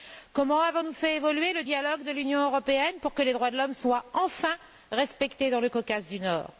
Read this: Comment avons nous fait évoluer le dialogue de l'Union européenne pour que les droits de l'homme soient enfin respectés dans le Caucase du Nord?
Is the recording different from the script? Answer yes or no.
no